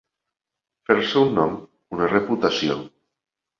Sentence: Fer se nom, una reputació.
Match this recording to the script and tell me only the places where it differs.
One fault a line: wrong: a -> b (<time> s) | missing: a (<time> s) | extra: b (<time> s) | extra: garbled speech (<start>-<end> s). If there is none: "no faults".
extra: un (1.3 s)